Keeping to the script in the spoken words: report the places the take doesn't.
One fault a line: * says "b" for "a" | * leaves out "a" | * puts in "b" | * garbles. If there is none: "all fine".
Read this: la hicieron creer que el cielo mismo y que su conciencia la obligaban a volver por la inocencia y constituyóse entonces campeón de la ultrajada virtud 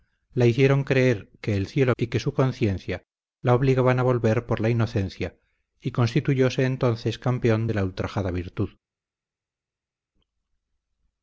* leaves out "mismo"